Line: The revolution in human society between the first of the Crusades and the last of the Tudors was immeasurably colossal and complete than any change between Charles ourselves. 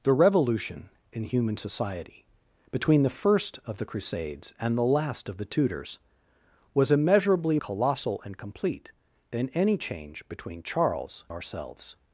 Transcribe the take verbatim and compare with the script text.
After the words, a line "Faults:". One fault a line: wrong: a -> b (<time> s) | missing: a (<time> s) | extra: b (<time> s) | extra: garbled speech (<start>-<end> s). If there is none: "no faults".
The revolution in human society between the first of the Crusades and the last of the Tudors was immeasurably colossal and complete than any change between Charles ourselves.
Faults:
no faults